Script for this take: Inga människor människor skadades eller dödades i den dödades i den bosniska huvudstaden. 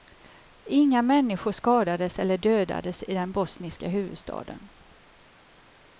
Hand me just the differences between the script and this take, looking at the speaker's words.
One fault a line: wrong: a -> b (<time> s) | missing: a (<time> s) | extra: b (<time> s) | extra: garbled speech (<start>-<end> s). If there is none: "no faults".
missing: människor (1.5 s)
missing: dödades i den (3.3 s)